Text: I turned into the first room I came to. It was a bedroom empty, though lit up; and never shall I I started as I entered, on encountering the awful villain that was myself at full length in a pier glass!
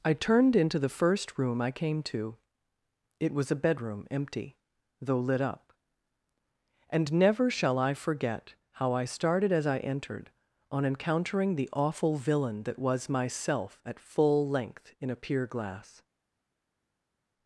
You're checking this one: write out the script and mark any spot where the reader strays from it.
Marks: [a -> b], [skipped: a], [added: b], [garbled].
I turned into the first room I came to. It was a bedroom empty, though lit up; and never shall I [added: forget how] I started as I entered, on encountering the awful villain that was myself at full length in a pier glass!